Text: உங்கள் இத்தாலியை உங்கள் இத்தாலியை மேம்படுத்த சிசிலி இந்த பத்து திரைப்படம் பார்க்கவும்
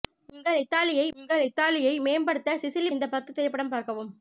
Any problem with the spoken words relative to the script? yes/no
no